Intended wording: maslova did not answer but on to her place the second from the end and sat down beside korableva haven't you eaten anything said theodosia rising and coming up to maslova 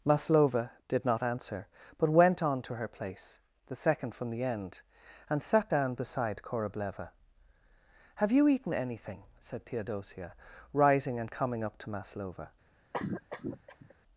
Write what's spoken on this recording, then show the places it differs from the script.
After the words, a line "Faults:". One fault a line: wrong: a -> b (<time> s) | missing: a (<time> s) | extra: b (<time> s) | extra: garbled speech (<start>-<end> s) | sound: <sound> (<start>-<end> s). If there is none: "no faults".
maslova did not answer but went on to her place the second from the end and sat down beside korableva have you eaten anything said theodosia rising and coming up to maslova
Faults:
extra: went (2.1 s)
wrong: haven't -> have (8.1 s)
sound: cough (12.9-13.9 s)